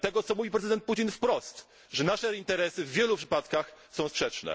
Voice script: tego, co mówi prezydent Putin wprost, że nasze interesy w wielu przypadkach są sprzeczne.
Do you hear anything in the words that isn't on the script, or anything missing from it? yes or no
no